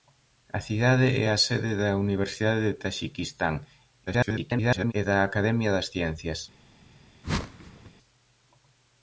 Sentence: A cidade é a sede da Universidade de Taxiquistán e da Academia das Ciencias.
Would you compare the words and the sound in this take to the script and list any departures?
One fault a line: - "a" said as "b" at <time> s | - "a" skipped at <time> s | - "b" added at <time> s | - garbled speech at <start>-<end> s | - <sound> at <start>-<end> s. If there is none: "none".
- garbled speech at 4.1-4.9 s
- whoosh at 7.2-7.9 s